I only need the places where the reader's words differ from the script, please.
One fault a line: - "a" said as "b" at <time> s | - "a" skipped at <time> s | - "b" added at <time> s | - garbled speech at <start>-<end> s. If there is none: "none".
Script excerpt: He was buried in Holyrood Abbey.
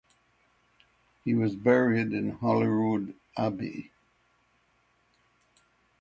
none